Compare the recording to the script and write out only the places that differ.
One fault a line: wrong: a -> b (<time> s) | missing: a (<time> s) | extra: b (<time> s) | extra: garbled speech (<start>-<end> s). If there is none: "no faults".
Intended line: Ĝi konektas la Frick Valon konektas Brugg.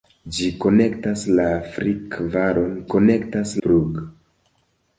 no faults